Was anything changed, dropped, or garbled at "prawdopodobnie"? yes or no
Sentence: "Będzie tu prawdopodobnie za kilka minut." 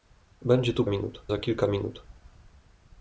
yes